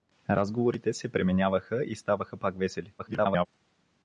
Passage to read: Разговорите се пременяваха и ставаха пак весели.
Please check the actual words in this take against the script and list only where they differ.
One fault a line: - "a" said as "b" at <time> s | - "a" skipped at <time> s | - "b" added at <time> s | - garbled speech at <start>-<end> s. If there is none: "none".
- garbled speech at 3.0-3.5 s